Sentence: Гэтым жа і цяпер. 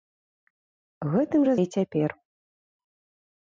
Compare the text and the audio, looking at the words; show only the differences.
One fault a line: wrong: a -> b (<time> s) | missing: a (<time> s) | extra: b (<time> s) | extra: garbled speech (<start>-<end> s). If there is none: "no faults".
no faults